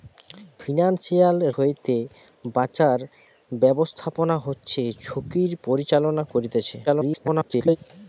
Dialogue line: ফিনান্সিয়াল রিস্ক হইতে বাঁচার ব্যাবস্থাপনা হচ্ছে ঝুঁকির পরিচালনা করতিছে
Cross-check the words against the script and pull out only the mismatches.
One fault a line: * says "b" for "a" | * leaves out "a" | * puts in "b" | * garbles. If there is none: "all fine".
* leaves out "রিস্ক"
* garbles